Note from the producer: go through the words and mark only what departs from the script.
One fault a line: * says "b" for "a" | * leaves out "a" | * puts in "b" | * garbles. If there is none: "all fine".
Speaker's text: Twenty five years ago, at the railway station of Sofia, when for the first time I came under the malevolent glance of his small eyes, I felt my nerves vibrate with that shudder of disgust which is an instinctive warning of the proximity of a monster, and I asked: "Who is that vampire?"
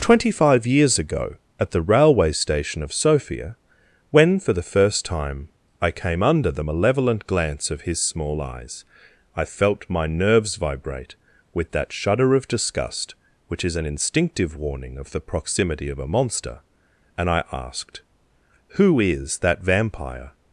all fine